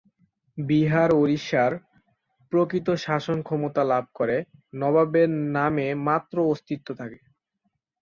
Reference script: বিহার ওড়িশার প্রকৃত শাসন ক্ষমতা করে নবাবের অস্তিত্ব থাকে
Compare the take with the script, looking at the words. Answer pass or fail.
fail